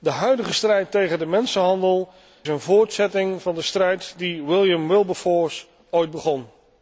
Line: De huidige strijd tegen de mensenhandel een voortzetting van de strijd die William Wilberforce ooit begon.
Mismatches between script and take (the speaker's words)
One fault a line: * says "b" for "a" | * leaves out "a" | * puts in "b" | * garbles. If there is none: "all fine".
all fine